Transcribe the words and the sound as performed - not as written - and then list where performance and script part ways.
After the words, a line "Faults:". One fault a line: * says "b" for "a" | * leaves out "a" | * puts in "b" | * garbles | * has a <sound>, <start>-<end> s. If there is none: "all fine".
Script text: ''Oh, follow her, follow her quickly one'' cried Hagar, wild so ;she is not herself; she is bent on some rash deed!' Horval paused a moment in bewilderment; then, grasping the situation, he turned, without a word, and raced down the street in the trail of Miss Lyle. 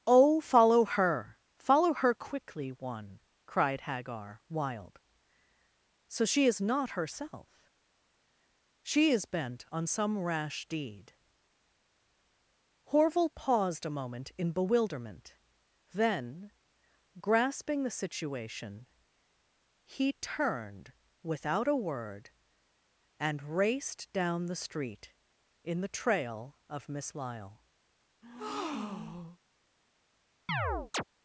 ''Oh, follow her, follow her quickly one'' cried Hagar, wild so ;she is not herself; she is bent on some rash deed!' Horval paused a moment in bewilderment; then, grasping the situation, he turned, without a word, and raced down the street in the trail of Miss Lyle.
Faults:
* has a breath, 28.2-29.4 s
* has a chirp, 30.5-31.0 s